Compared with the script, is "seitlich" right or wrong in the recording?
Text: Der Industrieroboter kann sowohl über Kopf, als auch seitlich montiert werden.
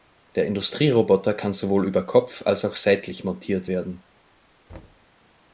right